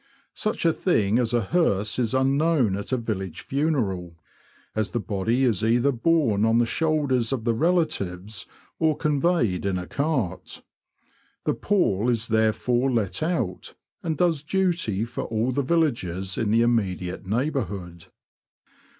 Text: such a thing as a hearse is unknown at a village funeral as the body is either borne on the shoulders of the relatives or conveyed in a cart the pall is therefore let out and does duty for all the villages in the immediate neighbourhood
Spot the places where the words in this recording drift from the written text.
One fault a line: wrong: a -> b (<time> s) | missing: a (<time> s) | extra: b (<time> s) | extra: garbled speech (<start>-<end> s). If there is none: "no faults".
no faults